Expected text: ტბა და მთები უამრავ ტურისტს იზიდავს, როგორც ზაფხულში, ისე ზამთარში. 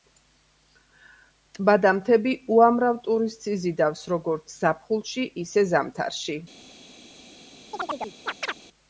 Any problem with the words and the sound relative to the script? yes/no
yes